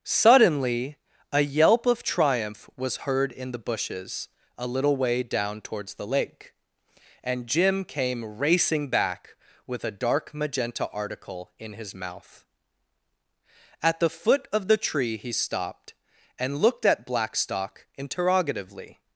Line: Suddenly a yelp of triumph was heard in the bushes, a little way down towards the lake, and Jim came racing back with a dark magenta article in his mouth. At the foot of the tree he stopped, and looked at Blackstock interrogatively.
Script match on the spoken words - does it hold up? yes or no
yes